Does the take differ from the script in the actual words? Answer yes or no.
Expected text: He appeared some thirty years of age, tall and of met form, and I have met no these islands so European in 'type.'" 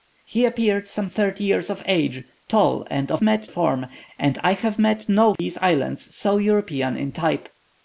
no